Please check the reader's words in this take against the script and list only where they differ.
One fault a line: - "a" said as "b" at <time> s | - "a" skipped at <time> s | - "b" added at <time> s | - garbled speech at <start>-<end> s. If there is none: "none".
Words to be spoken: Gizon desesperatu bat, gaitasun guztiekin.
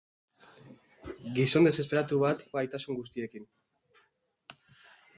none